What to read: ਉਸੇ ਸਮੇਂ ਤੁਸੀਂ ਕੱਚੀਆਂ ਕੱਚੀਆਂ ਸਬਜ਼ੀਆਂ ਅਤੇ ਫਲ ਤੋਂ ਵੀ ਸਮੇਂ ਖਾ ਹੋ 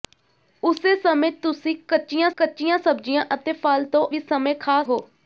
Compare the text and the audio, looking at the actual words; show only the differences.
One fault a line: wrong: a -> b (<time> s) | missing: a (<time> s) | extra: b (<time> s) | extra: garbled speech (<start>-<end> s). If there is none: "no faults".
no faults